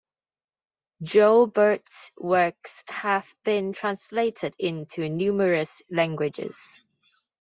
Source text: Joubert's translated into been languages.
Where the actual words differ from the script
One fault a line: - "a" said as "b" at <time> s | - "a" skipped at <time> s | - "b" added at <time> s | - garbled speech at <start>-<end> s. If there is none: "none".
- "works have been" added at 2.2 s
- "been" said as "numerous" at 5.1 s